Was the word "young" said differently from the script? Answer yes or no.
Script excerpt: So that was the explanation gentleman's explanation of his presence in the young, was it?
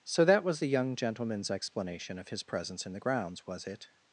yes